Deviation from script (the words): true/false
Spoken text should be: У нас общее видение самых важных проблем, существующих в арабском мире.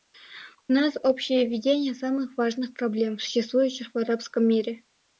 false